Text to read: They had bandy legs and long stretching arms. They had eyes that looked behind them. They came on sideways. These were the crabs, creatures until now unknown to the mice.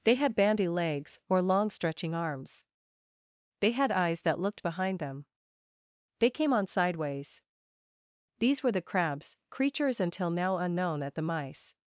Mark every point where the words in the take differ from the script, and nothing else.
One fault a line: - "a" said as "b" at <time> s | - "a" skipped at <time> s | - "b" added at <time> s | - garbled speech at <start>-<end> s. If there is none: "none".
- "and" said as "or" at 1.3 s
- "to" said as "at" at 11.0 s